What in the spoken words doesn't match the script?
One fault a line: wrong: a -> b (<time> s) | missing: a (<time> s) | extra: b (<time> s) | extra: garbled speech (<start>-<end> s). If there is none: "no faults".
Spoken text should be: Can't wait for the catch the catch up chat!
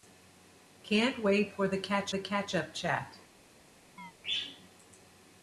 no faults